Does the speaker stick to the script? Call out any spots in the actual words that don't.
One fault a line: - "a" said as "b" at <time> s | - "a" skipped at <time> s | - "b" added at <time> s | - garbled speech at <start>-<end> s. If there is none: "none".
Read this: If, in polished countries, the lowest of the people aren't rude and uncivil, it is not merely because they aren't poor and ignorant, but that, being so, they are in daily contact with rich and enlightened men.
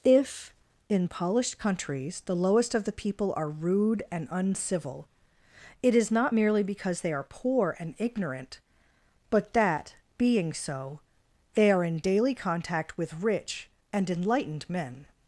- "aren't" said as "are" at 3.4 s
- "aren't" said as "are" at 7.1 s